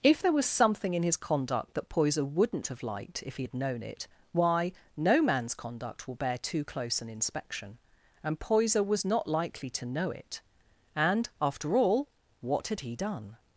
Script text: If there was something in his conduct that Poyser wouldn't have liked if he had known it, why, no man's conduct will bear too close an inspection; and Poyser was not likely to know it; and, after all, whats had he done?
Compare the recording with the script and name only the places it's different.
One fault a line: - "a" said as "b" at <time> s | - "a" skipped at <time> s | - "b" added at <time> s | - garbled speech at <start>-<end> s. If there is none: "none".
- "whats" said as "what" at 12.4 s